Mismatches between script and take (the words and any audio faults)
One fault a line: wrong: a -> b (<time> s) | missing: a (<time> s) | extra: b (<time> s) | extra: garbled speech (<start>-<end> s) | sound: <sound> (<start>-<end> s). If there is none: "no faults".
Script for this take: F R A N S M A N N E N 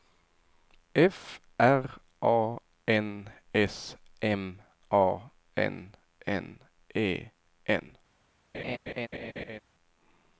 sound: laugh (8.5-9.6 s)